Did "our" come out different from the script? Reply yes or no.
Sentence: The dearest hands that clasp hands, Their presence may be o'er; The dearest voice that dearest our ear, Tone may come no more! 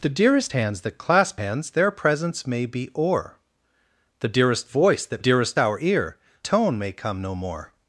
no